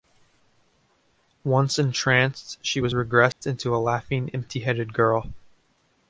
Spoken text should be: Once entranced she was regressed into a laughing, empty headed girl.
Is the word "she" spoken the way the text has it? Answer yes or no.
yes